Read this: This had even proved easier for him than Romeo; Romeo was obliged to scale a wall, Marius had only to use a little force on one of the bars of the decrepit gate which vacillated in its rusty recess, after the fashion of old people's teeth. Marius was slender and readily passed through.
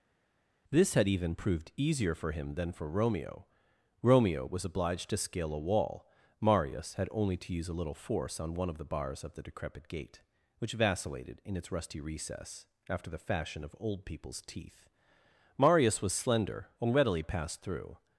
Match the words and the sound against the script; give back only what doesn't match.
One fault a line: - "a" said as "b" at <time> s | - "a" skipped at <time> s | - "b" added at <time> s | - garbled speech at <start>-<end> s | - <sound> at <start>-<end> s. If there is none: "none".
- "for" added at 2.7 s